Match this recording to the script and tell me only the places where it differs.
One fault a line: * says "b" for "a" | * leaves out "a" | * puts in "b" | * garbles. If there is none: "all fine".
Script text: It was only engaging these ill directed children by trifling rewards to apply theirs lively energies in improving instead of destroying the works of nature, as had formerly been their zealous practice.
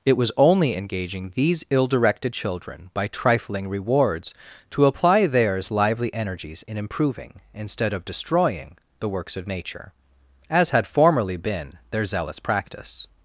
all fine